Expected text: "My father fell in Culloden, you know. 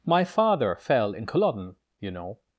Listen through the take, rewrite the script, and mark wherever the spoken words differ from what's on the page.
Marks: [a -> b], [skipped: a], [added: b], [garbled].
"My father fell in Culloden, you know.